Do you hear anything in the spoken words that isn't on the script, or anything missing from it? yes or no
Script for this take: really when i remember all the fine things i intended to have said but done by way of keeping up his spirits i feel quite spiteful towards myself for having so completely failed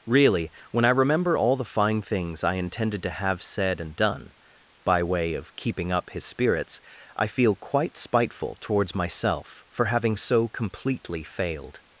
yes